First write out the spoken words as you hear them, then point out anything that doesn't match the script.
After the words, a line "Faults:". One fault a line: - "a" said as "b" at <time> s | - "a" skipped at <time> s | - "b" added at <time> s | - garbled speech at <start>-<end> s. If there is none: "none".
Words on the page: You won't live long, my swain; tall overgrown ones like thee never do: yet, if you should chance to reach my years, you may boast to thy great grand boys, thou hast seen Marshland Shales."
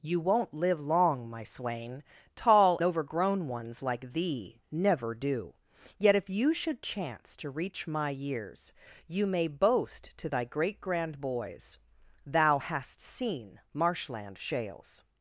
You won't live long, my swain; tall overgrown ones like thee never do: yet, if you should chance to reach my years, you may boast to thy great grand boys, thou hast seen Marshland Shales."
Faults:
none